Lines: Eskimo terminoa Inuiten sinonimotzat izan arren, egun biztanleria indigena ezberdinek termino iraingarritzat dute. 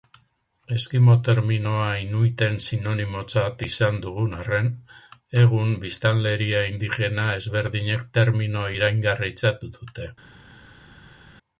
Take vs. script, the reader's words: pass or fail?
fail